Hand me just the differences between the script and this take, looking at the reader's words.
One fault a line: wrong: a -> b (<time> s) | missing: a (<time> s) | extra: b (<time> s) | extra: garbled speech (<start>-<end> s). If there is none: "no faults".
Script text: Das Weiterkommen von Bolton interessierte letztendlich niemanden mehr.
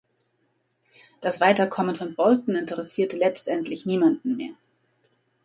no faults